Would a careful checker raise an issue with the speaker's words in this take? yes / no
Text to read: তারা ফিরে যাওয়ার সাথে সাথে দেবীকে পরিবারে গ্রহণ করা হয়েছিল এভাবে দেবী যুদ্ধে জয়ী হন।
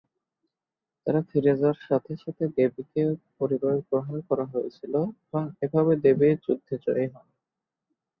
yes